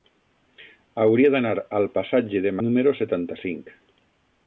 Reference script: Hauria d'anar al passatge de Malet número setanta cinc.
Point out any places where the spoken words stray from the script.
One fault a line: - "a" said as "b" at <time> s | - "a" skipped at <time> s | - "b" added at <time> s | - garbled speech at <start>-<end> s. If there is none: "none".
- "Malet" skipped at 2.6 s